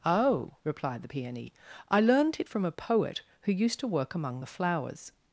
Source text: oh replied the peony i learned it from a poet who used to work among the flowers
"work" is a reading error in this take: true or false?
false